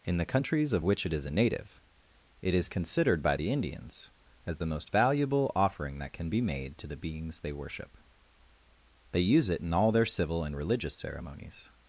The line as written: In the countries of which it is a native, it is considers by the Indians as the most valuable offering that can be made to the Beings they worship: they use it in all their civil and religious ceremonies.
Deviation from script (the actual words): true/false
true